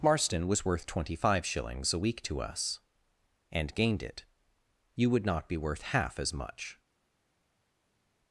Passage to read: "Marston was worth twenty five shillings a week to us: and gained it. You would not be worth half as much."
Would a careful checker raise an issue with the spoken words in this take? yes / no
no